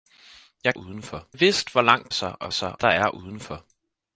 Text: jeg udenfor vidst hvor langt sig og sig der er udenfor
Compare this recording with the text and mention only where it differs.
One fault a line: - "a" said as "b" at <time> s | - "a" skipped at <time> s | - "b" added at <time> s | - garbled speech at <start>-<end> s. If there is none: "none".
none